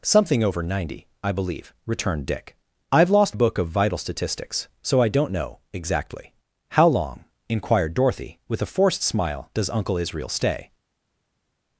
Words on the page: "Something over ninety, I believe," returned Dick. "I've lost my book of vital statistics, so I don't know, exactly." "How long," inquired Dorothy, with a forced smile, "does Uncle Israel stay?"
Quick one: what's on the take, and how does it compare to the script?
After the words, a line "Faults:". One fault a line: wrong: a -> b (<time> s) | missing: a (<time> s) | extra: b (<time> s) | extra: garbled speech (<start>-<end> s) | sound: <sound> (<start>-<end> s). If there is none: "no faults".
"Something over ninety, I believe," returned Dick. "I've lost book of vital statistics, so I don't know, exactly." "How long," inquired Dorothy, with a forced smile, "does Uncle Israel stay?"
Faults:
missing: my (3.4 s)